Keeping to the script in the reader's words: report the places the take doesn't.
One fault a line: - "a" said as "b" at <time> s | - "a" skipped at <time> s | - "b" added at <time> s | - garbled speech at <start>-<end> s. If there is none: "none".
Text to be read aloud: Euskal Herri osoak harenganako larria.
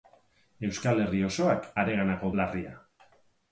none